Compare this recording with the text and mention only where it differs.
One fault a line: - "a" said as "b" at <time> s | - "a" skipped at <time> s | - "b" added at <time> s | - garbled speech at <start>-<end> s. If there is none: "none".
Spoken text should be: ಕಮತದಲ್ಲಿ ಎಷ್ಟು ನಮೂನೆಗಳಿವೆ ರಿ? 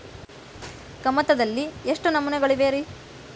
none